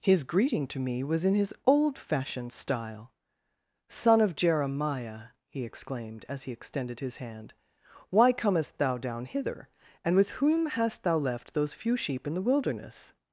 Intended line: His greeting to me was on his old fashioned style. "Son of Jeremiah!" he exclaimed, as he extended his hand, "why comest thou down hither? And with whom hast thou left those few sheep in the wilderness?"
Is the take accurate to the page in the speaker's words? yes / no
no